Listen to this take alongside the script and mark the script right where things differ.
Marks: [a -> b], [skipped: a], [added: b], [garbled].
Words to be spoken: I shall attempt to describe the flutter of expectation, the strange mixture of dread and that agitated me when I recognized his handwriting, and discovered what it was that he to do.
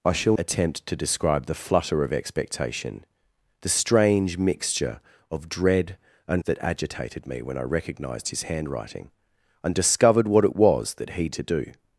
I shall attempt to describe the flutter of expectation, the strange mixture of dread and that agitated me when I recognized his handwriting, and discovered what it was that he to do.